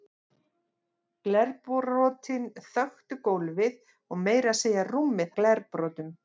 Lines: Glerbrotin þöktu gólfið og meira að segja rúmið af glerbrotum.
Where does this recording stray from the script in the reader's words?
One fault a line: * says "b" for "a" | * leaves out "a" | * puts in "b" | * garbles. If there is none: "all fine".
all fine